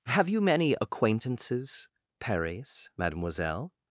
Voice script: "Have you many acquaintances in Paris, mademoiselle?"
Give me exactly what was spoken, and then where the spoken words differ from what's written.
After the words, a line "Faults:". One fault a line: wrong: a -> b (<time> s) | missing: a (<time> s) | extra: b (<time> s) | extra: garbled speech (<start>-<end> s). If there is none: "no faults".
"Have you many acquaintances Paris, mademoiselle?"
Faults:
missing: in (1.9 s)